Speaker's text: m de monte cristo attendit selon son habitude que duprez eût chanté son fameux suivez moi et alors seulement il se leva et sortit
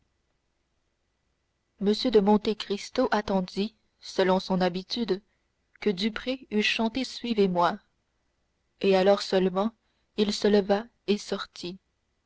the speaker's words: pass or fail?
fail